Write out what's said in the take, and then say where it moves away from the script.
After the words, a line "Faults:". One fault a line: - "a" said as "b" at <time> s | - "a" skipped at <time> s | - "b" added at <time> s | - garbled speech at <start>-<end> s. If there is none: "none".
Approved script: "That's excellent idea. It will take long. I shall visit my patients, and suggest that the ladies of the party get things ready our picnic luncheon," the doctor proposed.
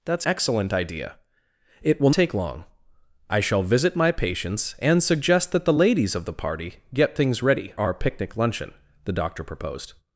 "That's excellent idea. It will take long. I shall visit my patients, and suggest that the ladies of the party get things ready our picnic luncheon," the doctor proposed.
Faults:
none